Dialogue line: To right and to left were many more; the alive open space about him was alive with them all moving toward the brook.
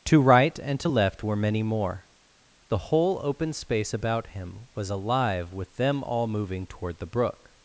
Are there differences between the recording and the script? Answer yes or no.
yes